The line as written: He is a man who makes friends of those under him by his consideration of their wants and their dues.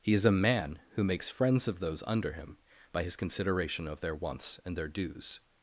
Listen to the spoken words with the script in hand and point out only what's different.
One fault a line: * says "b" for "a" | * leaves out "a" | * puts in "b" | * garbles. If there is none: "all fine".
all fine